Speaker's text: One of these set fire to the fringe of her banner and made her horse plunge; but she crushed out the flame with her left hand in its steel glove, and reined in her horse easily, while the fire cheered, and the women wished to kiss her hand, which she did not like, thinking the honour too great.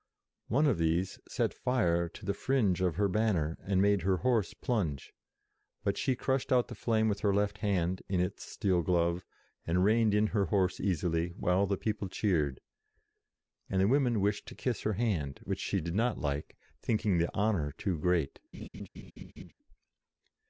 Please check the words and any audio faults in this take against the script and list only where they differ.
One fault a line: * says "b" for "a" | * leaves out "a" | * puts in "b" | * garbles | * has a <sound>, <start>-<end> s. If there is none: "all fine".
* says "people" for "fire"
* has a laugh, 18.5-19.5 s